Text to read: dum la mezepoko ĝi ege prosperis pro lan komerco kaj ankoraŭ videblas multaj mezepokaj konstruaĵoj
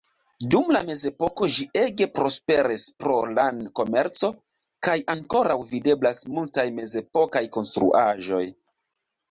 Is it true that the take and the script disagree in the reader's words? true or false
false